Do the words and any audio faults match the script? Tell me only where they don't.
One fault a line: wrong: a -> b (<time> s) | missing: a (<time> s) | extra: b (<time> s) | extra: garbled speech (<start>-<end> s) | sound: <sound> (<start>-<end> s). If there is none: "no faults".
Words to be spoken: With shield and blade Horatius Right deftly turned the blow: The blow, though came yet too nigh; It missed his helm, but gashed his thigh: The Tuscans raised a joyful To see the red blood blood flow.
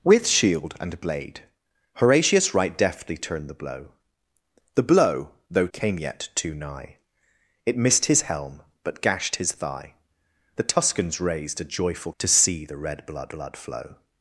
no faults